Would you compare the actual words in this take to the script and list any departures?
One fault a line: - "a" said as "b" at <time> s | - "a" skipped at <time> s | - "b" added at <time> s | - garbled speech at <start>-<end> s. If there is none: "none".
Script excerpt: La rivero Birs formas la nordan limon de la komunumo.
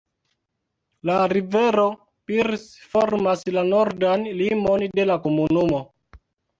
none